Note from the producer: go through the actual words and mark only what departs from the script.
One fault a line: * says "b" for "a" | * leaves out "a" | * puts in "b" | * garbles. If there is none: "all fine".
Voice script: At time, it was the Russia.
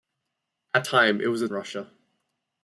all fine